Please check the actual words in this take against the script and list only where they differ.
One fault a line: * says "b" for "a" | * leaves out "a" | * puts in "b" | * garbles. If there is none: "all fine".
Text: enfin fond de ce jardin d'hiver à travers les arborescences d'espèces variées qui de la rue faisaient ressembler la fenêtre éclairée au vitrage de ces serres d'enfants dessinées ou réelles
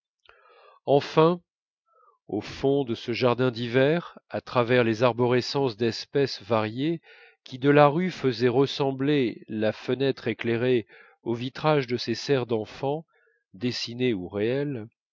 * puts in "au"